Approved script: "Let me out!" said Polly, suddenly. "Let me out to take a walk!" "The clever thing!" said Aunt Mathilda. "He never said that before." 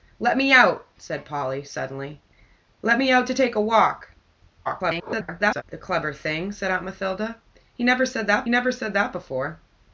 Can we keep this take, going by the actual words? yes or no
no